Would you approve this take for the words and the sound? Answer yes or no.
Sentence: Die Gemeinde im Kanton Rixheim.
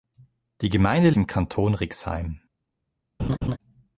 no